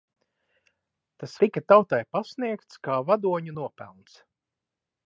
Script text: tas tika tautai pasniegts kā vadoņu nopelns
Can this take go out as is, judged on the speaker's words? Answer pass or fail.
pass